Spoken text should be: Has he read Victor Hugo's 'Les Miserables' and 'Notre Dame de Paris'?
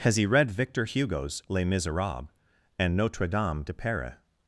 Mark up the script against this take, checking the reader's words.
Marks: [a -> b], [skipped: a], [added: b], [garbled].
Has he read Victor Hugo's 'Les Miserables' and 'Notre Dame de Paris'?